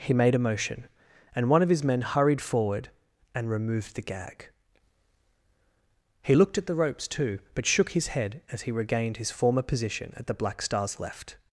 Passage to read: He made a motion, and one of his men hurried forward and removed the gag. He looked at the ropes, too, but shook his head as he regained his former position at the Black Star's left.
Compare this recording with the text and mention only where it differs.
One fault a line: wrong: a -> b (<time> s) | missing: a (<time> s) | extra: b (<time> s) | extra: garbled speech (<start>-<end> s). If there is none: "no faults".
no faults